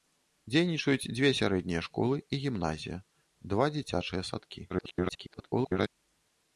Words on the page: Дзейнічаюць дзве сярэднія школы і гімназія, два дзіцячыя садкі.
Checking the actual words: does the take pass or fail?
fail